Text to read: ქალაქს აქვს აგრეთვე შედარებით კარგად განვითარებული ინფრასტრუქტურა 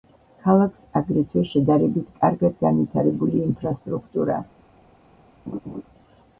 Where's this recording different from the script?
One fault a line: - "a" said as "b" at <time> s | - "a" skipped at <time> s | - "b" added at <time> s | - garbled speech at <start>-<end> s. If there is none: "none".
- "აქვს" skipped at 0.8 s